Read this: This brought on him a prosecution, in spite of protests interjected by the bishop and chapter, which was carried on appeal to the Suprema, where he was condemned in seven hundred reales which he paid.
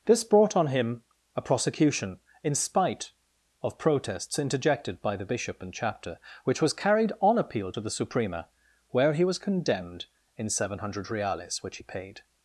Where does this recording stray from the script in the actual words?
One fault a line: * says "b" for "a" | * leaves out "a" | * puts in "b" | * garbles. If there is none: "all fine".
all fine